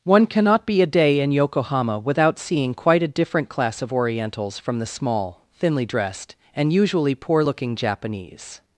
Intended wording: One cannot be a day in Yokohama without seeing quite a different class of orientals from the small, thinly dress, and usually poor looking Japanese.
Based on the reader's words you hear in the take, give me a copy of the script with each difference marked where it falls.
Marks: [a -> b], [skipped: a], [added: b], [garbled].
One cannot be a day in Yokohama without seeing quite a different class of orientals from the small, thinly [dress, -> dressed] and usually poor looking Japanese.